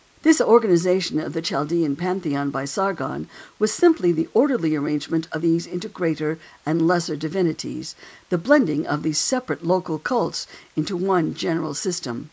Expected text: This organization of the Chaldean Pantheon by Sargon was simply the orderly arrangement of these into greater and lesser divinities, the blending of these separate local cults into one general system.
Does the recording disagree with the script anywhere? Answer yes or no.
no